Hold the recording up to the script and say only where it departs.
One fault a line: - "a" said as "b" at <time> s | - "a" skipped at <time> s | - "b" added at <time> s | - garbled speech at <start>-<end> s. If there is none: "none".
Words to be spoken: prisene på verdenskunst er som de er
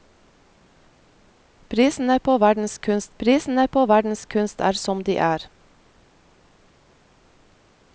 - "prisene på verdenskunst" added at 3.2 s